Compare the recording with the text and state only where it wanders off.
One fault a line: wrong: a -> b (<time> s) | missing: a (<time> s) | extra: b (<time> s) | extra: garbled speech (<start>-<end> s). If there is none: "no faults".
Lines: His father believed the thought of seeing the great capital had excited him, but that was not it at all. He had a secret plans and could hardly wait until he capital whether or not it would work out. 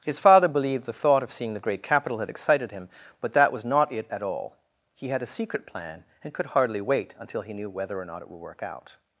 wrong: plans -> plan (5.7 s)
wrong: capital -> knew (7.5 s)